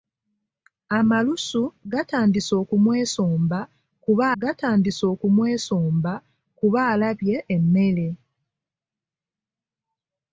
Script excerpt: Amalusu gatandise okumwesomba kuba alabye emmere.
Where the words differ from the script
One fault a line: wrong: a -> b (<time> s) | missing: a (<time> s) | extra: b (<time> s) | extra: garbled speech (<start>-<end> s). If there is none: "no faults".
extra: gatandise okumwesomba kuba (4.4 s)